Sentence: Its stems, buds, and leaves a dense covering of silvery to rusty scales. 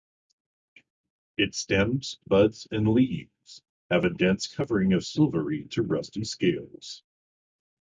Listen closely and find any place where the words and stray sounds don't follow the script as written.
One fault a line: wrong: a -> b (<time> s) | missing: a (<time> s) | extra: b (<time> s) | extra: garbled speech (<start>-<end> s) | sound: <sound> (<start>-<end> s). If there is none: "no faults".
extra: have (3.9 s)